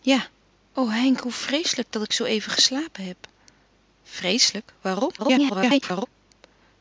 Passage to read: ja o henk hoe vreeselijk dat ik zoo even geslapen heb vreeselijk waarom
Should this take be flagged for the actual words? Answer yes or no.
yes